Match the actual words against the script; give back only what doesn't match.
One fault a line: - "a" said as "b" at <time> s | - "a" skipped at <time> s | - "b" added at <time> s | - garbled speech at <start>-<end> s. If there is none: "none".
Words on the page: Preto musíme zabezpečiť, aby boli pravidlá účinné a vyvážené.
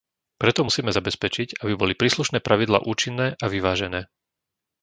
- "príslušné" added at 2.0 s